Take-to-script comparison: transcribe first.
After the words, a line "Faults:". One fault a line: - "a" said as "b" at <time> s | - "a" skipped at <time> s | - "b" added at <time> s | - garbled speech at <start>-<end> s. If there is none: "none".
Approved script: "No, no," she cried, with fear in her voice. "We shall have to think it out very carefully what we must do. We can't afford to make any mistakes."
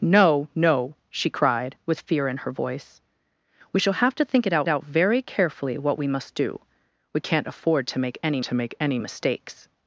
"No, no," she cried, with fear in her voice. "We shall have to think it out out very carefully what we must do. We can't afford to make any to make any mistakes."
Faults:
- "out" added at 4.7 s
- "to make any" added at 8.4 s